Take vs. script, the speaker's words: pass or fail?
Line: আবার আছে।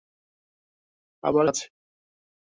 pass